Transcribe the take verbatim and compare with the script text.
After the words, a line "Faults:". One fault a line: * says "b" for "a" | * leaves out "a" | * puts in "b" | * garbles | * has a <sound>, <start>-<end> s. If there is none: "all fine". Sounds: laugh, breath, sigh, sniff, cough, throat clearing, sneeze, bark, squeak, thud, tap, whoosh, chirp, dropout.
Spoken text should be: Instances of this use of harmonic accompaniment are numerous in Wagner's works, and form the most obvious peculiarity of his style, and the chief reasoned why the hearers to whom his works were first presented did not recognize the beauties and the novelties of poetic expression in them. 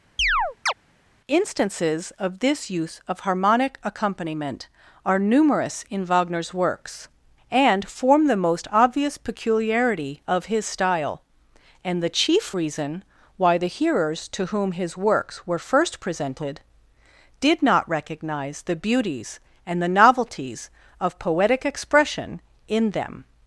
Instances of this use of harmonic accompaniment are numerous in Wagner's works, and form the most obvious peculiarity of his style, and the chief reason why the hearers to whom his works were first presented did not recognize the beauties and the novelties of poetic expression in them.
Faults:
* has a chirp, 0.2-0.7 s
* says "reason" for "reasoned"